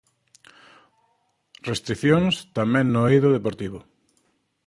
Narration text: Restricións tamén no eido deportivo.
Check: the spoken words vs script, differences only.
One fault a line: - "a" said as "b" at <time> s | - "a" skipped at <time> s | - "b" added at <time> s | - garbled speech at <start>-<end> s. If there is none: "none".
none